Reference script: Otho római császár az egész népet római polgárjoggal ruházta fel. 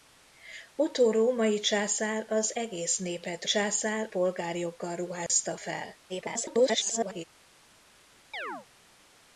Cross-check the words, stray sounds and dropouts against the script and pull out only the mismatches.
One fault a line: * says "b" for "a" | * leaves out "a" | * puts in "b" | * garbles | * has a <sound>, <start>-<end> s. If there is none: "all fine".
* says "császár" for "római"
* has a dropout, 5.3-5.3 s
* garbles
* has a chirp, 8.3-8.7 s